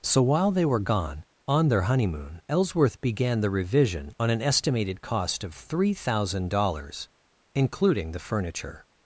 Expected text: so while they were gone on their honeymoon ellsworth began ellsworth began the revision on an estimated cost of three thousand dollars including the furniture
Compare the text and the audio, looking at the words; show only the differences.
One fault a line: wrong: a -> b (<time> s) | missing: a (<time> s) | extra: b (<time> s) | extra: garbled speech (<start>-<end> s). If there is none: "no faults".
missing: ellsworth began (3.4 s)